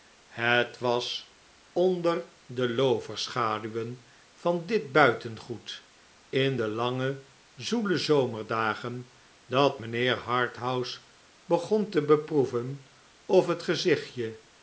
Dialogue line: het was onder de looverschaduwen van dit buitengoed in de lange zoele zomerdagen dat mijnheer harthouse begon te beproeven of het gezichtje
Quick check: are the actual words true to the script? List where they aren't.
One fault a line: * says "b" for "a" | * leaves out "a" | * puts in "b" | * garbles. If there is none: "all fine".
all fine